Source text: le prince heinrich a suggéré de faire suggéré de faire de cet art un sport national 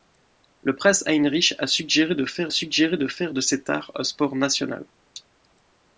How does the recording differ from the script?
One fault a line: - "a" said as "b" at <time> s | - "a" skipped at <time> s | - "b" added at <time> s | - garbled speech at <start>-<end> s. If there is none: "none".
none